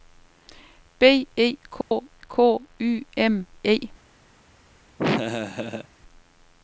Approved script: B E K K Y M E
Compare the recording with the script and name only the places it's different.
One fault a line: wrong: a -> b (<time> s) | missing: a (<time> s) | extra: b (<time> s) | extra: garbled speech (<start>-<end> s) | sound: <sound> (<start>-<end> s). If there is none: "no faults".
sound: dropout (1.8-1.9 s)
sound: laugh (5.0-5.9 s)